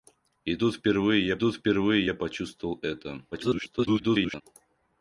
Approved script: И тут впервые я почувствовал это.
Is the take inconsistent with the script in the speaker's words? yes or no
yes